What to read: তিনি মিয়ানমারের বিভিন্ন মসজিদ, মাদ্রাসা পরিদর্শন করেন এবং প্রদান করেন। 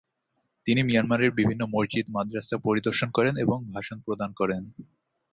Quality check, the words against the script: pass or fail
fail